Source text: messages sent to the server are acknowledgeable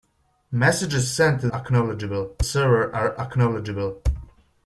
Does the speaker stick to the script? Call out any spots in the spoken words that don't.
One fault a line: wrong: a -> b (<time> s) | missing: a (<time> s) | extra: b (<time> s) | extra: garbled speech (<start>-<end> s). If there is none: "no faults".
wrong: the -> acknowledgeable (1.5 s)